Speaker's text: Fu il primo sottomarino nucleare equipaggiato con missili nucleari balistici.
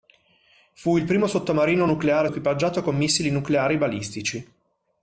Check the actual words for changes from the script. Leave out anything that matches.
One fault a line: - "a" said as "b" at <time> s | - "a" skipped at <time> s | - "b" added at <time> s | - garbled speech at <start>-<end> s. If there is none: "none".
none